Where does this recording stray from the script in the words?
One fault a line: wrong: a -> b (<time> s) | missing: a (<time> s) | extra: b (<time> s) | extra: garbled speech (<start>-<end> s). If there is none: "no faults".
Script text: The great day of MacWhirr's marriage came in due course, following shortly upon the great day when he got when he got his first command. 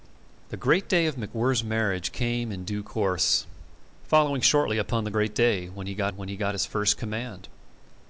no faults